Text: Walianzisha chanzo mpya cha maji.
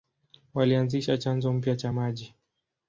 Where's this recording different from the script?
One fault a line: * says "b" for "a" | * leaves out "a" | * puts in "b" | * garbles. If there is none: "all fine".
all fine